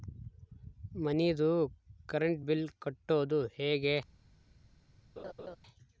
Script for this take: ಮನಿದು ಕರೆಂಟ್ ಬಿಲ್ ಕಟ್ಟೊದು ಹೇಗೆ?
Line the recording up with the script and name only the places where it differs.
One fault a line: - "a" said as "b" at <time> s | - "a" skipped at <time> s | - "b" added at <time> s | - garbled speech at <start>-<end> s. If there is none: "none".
none